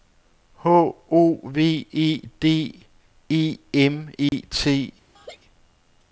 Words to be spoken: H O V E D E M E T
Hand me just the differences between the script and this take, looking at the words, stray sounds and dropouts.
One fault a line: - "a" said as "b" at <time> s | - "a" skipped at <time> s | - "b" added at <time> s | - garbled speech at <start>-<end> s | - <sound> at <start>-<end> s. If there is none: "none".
- dropout at 4.3-4.3 s
- laugh at 5.2-5.4 s